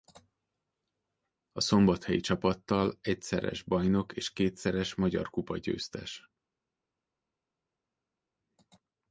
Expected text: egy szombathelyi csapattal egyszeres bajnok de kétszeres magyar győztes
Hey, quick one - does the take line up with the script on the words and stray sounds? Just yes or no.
no